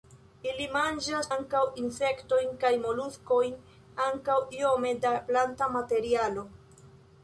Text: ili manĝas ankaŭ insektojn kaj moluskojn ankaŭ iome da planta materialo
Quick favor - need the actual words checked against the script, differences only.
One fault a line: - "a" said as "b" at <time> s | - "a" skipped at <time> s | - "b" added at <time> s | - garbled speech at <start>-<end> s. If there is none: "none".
none